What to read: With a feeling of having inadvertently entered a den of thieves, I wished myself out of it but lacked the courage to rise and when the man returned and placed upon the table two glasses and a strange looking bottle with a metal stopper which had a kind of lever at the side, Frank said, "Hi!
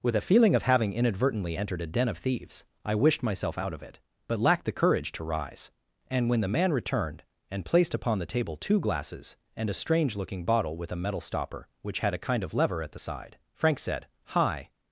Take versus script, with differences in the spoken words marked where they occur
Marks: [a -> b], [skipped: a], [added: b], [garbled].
With a feeling of having inadvertently entered a den of thieves, I wished myself out of it but lacked the courage to rise and when the man returned and placed upon the table two glasses and a strange looking bottle with a metal stopper which had a kind of lever at the side, Frank said, "Hi!